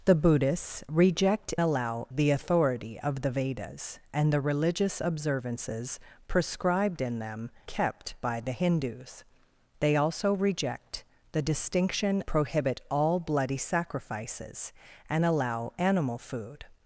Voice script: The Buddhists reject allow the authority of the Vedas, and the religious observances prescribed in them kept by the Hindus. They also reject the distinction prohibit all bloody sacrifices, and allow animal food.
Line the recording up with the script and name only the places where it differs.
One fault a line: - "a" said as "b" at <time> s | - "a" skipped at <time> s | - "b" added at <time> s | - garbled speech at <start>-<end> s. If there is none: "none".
none